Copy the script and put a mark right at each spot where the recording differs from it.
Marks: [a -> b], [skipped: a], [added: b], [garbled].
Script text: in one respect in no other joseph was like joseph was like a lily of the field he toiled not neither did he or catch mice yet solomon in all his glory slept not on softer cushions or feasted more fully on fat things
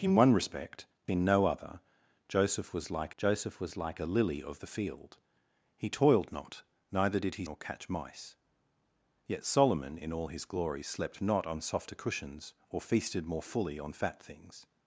in one respect in no other joseph was like joseph was like a lily of the field he toiled not neither did he or catch mice yet solomon in all his glory slept not on softer cushions or feasted more fully on fat things